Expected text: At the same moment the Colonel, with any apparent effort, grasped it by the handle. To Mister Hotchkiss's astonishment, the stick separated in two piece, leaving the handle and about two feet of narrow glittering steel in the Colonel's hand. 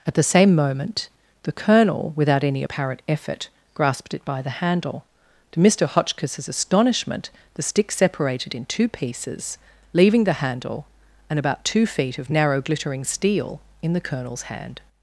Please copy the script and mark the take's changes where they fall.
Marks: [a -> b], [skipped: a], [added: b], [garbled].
At the same moment the Colonel, [with -> without] any apparent effort, grasped it by the handle. To Mister Hotchkiss's astonishment, the stick separated in two [piece, -> pieces] leaving the handle and about two feet of narrow glittering steel in the Colonel's hand.